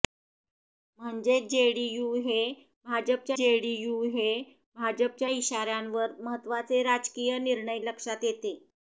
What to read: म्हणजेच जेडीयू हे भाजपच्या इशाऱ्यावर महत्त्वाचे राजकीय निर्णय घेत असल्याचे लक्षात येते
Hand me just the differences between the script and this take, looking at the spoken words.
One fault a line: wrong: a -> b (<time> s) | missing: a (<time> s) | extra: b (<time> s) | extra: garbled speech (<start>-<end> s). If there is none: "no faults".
extra: जेडीयू हे भाजपच्या (3.4 s)
missing: घेत असल्याचे (7.8 s)